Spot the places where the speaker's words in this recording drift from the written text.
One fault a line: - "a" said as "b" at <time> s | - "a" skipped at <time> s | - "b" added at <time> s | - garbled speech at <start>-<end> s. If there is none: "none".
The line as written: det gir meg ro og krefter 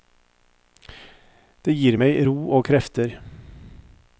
none